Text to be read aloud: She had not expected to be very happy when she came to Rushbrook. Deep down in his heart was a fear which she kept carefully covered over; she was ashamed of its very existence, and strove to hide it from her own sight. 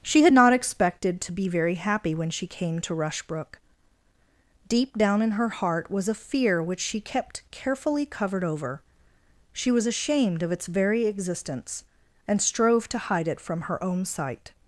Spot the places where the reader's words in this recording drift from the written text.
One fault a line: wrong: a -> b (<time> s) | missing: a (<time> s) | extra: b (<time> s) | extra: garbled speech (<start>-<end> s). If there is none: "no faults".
wrong: his -> her (5.3 s)